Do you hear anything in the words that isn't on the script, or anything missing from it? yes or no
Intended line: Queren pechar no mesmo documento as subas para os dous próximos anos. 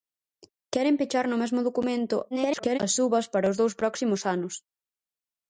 yes